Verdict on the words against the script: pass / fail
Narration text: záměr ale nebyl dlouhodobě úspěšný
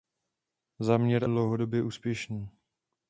fail